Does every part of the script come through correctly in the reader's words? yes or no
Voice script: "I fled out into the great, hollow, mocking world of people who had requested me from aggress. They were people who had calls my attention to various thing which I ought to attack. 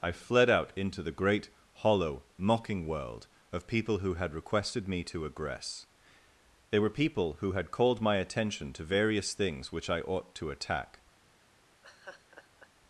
no